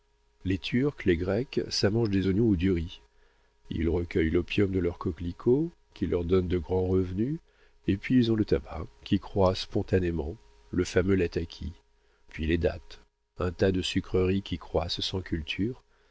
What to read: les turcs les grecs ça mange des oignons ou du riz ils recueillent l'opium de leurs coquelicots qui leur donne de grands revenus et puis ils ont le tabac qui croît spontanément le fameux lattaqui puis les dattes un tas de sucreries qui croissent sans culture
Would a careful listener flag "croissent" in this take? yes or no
no